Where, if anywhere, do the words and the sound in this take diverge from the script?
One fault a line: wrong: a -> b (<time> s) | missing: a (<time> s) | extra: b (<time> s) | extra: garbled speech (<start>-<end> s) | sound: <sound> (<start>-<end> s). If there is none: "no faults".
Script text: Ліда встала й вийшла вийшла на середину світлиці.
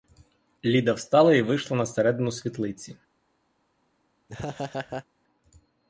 missing: вийшла (1.8 s)
sound: laugh (4.3-5.1 s)